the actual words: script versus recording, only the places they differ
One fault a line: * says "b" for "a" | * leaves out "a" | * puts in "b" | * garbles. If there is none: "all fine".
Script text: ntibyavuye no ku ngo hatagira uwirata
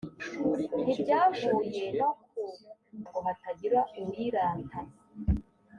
all fine